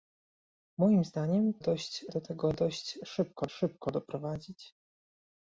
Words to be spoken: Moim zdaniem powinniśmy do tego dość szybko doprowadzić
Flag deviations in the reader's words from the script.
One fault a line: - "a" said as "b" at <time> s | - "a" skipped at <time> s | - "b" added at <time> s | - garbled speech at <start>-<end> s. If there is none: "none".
- "powinniśmy" said as "dość" at 1.6 s
- "szybko" added at 3.5 s